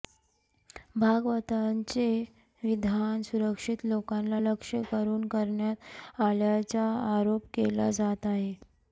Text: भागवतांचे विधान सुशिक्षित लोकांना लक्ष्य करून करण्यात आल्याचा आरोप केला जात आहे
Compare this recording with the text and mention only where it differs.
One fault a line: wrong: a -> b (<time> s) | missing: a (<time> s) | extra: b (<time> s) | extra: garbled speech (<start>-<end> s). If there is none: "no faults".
no faults